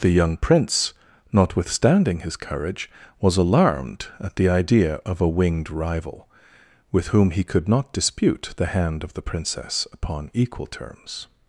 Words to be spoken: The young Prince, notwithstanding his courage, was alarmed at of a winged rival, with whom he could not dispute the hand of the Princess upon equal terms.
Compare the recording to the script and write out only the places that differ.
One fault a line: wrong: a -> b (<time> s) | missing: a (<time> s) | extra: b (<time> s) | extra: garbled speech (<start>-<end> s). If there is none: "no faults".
extra: the idea (4.4 s)